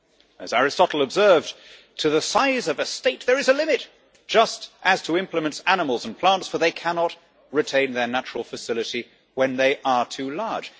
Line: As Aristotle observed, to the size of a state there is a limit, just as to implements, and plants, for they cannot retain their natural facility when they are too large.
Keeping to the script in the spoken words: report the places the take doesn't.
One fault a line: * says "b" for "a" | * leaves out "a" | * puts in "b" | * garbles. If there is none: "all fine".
* puts in "animals"